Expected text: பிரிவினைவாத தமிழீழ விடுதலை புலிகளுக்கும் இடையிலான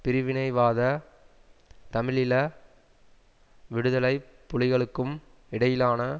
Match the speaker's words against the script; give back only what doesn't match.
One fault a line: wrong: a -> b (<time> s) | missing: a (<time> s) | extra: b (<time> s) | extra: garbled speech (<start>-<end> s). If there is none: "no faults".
no faults